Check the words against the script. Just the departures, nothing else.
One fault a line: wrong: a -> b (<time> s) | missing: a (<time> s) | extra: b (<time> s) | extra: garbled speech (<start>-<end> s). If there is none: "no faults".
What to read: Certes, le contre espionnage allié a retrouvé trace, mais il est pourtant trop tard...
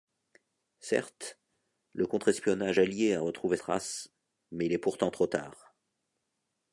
no faults